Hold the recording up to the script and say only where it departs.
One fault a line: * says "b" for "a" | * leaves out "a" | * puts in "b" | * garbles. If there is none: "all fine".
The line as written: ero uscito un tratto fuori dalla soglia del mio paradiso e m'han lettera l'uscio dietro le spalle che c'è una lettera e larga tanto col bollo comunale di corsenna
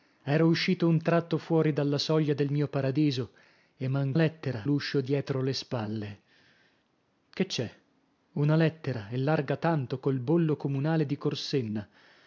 all fine